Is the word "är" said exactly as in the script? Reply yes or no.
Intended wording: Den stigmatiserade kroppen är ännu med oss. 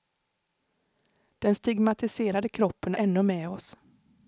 no